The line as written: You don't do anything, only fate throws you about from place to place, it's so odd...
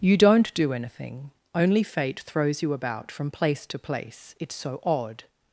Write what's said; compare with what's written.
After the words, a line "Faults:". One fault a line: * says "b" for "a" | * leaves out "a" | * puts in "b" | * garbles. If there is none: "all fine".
You don't do anything, only fate throws you about from place to place, it's so odd...
Faults:
all fine